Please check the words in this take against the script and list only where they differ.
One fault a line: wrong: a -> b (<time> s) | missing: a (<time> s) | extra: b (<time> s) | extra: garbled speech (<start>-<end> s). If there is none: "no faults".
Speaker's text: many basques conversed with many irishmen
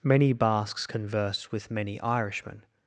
no faults